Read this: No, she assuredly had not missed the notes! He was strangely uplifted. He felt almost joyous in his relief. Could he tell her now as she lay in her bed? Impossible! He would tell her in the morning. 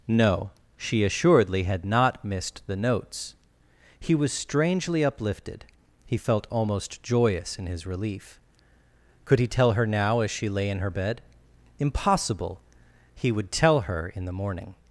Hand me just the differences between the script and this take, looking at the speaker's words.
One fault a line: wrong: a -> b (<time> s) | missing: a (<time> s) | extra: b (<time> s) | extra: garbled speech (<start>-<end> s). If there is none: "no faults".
no faults